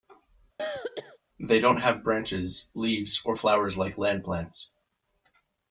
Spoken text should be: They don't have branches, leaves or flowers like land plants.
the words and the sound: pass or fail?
fail